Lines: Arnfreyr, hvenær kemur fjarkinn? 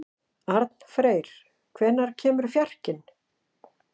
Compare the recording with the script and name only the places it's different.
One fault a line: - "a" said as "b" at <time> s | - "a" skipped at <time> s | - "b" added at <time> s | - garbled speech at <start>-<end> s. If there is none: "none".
none